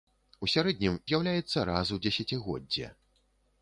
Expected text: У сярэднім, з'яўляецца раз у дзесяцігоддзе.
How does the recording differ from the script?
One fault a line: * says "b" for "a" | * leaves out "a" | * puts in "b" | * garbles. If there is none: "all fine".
all fine